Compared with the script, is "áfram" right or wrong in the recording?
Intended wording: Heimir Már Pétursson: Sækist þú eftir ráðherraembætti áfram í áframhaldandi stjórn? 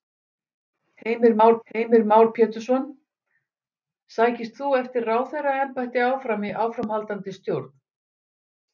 right